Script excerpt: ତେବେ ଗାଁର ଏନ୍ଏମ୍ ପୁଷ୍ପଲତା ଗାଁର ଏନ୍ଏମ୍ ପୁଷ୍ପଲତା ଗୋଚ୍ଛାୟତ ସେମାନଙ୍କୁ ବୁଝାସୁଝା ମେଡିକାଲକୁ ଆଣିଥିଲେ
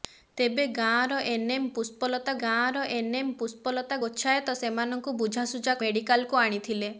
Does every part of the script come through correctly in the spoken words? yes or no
yes